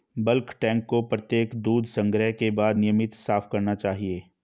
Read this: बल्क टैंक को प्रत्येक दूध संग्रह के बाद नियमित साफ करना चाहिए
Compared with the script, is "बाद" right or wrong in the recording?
right